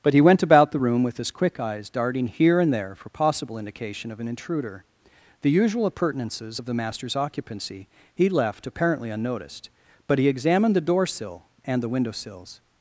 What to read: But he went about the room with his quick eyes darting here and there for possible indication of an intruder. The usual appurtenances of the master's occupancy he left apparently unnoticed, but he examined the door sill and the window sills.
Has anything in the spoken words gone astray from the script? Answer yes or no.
no